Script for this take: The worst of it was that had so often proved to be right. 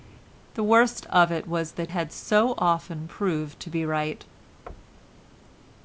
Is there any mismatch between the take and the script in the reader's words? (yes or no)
no